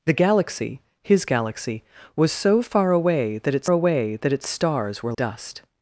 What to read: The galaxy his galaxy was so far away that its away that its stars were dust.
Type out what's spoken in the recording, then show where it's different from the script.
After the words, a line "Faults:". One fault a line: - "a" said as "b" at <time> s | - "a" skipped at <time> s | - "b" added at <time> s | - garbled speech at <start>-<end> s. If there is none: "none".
The galaxy his galaxy was so far away that its away that its stars were dust.
Faults:
none